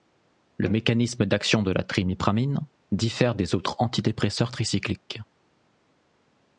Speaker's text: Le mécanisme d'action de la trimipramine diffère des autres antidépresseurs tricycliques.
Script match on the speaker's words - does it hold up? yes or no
yes